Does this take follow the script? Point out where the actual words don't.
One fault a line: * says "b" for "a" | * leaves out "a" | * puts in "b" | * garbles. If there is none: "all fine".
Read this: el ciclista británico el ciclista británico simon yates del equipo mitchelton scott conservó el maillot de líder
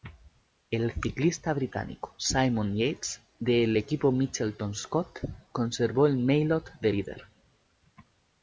* leaves out "el ciclista británico"